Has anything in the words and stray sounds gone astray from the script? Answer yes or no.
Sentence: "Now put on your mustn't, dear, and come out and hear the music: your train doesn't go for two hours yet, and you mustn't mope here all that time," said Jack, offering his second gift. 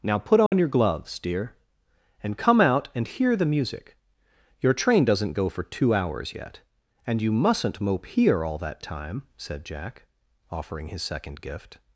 yes